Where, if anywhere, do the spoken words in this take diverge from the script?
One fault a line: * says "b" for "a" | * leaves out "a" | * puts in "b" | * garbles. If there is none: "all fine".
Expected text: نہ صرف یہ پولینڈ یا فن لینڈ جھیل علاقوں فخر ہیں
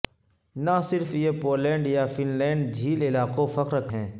all fine